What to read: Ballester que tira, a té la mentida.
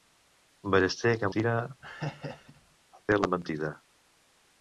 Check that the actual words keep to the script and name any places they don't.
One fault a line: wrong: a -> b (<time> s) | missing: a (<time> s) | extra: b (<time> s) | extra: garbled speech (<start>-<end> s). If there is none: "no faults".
no faults